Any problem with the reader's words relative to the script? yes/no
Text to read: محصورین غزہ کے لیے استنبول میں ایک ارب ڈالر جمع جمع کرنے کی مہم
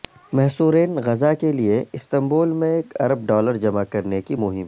yes